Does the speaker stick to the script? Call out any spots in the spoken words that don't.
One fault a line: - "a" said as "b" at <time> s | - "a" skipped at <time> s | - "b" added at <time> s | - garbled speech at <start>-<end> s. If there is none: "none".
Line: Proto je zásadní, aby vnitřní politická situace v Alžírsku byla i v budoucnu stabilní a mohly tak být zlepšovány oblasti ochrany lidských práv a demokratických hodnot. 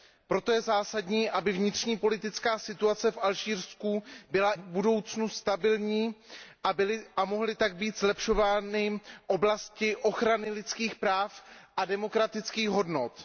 - "i" skipped at 4.5 s